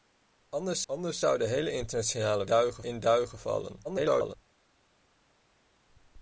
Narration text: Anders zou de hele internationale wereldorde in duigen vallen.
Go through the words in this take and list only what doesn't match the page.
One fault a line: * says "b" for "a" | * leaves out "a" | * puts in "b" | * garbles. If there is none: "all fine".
* puts in "anders"
* says "duigen" for "wereldorde"
* garbles